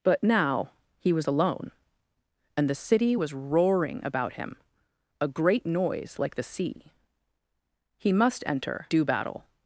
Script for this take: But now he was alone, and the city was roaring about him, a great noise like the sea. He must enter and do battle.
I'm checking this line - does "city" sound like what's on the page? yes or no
yes